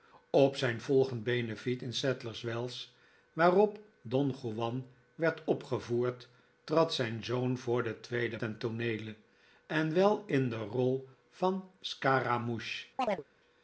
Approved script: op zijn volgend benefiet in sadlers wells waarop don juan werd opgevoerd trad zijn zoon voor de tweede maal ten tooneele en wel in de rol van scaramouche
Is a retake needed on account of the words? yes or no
yes